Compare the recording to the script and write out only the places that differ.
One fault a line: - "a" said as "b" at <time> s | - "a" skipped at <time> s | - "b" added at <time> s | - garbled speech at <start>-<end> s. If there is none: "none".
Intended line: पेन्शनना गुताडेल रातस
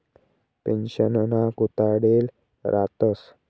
none